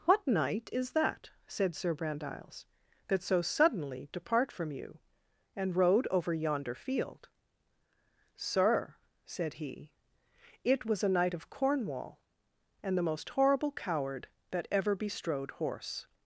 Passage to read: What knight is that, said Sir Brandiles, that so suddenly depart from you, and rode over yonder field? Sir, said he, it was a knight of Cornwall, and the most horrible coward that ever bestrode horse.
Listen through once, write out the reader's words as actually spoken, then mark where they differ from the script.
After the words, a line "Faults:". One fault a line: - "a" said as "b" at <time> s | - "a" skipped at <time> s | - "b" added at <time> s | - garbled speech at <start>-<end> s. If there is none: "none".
What knight is that, said Sir Brandiles, that so suddenly depart from you, and rode over yonder field? Sir, said he, it was a knight of Cornwall, and the most horrible coward that ever bestrode horse.
Faults:
none